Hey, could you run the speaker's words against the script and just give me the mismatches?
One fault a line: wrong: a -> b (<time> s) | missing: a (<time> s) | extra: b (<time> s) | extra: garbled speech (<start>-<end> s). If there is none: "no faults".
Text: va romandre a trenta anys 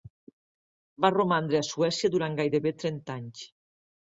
extra: suècia durant gairebé (1.7 s)